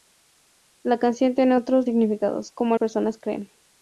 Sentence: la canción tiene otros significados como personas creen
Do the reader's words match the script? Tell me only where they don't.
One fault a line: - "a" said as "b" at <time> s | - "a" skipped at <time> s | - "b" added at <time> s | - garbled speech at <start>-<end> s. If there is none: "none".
none